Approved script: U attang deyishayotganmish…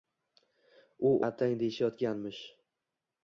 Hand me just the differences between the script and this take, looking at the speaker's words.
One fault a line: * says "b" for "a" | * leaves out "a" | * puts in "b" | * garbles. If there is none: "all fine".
all fine